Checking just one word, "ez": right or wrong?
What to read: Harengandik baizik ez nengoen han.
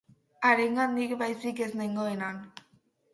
right